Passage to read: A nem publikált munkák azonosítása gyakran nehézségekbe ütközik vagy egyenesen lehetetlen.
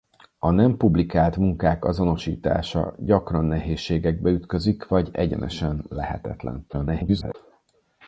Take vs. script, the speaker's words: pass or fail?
fail